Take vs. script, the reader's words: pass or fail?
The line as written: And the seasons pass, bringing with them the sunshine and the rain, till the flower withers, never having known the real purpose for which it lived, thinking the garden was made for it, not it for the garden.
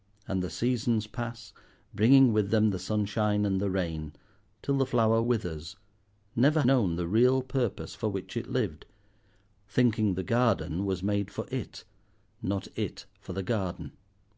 fail